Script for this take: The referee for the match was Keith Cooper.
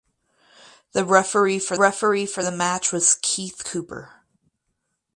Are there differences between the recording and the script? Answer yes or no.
yes